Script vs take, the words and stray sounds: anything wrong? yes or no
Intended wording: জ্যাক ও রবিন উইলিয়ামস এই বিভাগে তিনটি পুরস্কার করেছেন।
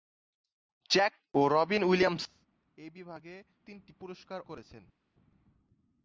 no